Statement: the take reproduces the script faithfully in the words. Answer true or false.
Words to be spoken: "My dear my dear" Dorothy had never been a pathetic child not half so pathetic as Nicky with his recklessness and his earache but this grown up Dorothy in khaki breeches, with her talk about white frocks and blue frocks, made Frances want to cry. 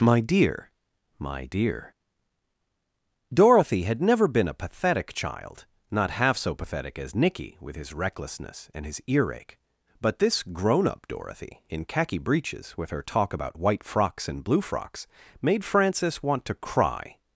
true